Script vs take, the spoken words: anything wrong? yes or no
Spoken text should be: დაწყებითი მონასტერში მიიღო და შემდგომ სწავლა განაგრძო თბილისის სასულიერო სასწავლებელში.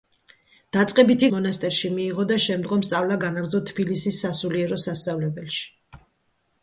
no